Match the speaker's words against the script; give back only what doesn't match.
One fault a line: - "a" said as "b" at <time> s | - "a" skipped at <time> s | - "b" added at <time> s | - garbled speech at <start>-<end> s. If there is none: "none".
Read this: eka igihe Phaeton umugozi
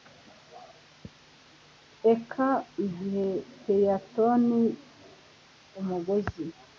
none